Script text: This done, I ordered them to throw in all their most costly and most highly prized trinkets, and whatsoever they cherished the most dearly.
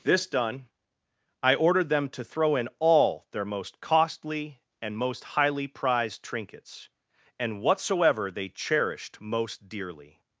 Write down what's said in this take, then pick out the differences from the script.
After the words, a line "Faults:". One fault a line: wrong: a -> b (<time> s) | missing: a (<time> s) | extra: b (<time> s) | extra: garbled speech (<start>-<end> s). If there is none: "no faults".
This done, I ordered them to throw in all their most costly and most highly prized trinkets, and whatsoever they cherished most dearly.
Faults:
missing: the (9.2 s)